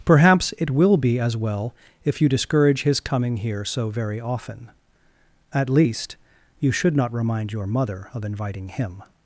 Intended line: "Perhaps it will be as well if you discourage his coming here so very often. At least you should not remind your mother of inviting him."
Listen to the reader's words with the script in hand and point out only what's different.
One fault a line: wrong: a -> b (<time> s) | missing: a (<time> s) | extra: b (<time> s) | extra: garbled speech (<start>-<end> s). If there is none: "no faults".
no faults